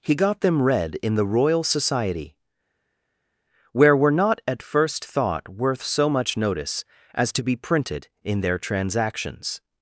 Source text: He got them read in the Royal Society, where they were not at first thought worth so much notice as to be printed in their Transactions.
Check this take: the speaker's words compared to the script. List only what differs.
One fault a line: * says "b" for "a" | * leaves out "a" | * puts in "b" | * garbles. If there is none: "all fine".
* leaves out "they"